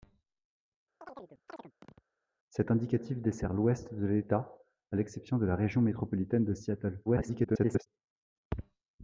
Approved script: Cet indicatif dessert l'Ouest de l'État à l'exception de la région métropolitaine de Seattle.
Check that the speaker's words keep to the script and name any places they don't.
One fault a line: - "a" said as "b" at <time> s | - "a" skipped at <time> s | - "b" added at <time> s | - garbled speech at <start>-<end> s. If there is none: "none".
- garbled speech at 7.1-7.9 s